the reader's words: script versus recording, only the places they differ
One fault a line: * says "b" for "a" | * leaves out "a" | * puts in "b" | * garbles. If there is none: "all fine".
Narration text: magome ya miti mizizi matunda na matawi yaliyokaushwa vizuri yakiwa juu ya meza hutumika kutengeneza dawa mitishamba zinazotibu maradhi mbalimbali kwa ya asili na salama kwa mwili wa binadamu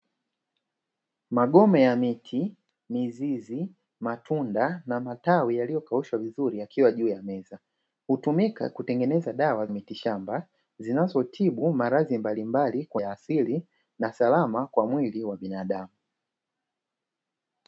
all fine